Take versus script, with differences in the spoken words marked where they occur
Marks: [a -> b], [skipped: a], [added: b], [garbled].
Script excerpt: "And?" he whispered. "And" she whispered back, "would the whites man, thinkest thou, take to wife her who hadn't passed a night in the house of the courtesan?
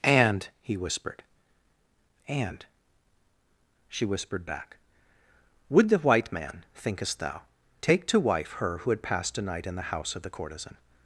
"And?" he whispered. "And" she whispered back, "would the [whites -> white] man, thinkest thou, take to wife her who [hadn't -> had] passed a night in the house of the courtesan?